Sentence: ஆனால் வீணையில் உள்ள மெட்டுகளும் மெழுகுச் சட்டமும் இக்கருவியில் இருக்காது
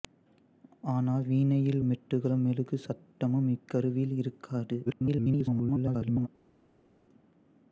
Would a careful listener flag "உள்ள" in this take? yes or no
yes